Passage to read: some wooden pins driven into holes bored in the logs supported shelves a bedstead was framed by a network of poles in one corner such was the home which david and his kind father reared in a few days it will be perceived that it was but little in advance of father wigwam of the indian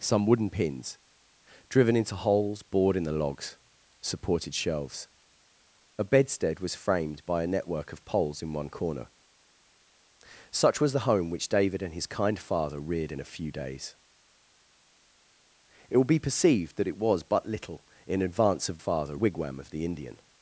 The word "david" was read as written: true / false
true